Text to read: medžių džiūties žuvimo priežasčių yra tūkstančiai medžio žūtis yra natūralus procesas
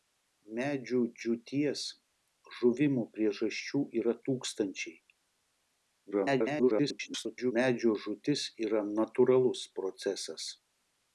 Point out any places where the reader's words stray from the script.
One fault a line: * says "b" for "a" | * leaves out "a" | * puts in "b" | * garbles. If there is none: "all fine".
* garbles